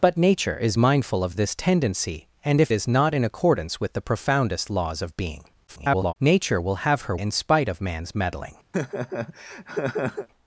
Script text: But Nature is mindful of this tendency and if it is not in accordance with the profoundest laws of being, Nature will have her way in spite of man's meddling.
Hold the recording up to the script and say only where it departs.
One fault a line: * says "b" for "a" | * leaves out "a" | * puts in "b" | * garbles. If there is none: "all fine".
* leaves out "it"
* garbles
* leaves out "way"